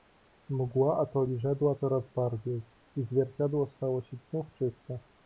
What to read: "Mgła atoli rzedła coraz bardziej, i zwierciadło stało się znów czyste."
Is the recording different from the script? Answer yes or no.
no